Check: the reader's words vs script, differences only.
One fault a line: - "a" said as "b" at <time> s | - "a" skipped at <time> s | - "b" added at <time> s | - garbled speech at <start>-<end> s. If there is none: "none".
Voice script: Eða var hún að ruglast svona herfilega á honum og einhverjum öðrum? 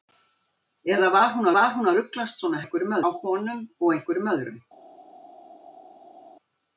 - "var hún" added at 1.6 s
- "herfilega" said as "einhverjum" at 2.6 s